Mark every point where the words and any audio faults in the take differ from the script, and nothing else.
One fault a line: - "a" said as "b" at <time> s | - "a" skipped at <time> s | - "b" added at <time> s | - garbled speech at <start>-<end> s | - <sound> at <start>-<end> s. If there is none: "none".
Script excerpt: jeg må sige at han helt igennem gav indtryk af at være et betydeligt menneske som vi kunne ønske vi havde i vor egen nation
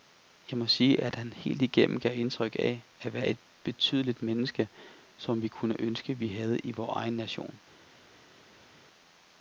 none